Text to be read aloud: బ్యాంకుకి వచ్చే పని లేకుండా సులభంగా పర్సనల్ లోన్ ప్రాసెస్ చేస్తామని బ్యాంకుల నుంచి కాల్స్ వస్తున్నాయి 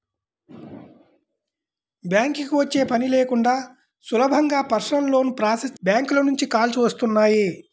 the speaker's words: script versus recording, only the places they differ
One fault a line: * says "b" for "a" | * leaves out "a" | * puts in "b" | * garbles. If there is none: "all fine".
* leaves out "చేస్తామని"